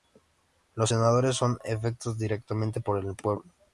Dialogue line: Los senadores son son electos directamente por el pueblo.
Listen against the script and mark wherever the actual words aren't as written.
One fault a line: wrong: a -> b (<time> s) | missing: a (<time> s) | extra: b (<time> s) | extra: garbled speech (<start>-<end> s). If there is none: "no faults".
missing: son (1.6 s)